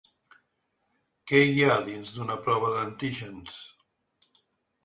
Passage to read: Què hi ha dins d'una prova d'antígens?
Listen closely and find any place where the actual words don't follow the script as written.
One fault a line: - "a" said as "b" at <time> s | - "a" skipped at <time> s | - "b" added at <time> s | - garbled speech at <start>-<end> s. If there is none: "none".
none